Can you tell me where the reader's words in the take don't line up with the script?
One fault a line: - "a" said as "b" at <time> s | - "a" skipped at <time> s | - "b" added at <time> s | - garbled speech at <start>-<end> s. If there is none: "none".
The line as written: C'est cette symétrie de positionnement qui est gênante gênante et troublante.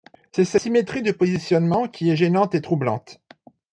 - "gênante" skipped at 2.5 s